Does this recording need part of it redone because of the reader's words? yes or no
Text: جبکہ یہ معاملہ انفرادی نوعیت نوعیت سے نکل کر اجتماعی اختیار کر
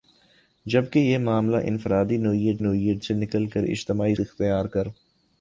no